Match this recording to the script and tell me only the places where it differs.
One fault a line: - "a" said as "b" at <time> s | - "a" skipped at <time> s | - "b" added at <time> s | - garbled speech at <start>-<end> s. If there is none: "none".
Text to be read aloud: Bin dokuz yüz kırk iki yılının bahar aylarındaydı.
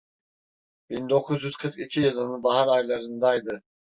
none